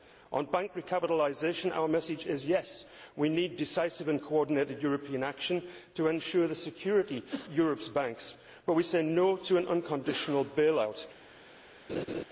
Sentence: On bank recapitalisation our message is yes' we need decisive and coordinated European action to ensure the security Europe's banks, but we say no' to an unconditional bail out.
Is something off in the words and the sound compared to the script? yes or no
yes